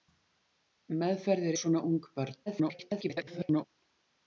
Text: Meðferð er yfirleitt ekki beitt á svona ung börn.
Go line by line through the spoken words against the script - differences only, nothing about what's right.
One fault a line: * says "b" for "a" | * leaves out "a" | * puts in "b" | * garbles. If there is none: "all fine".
* leaves out "yfirleitt ekki beitt"
* garbles